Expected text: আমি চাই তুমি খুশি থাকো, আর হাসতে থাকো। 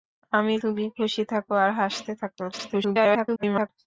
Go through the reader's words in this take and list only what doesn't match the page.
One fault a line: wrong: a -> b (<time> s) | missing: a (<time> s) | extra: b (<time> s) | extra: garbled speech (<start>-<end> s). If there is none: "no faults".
missing: চাই (0.5 s)
extra: garbled speech (2.5-3.7 s)